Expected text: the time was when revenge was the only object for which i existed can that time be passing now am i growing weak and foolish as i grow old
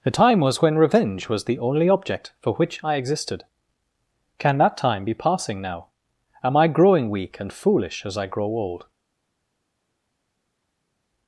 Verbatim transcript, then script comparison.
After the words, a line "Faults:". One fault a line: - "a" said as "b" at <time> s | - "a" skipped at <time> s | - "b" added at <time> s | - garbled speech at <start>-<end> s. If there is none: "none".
the time was when revenge was the only object for which i existed can that time be passing now am i growing weak and foolish as i grow old
Faults:
none